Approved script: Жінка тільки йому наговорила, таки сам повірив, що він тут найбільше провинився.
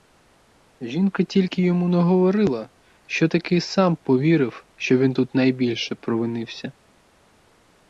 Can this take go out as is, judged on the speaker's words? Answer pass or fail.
fail